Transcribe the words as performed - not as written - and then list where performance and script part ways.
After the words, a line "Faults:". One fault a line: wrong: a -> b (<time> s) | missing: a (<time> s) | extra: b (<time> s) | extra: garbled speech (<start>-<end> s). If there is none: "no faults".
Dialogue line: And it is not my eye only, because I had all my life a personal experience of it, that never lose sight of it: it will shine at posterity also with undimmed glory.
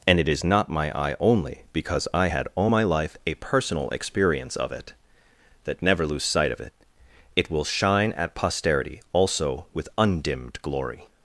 And it is not my eye only, because I had all my life a personal experience of it, that never lose sight of it: it will shine at posterity also with undimmed glory.
Faults:
no faults